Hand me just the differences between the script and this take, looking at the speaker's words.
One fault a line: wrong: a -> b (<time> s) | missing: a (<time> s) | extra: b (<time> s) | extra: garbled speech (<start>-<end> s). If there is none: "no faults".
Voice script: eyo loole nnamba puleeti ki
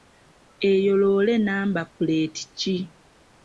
no faults